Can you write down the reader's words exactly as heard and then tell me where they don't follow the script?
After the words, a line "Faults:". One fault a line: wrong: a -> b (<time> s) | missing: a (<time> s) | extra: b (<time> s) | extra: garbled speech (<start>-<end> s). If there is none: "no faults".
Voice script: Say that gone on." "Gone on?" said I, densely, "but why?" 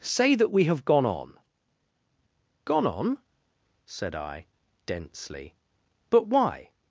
Say that we have gone on." "Gone on?" said I, densely, "but why?"
Faults:
extra: we have (0.5 s)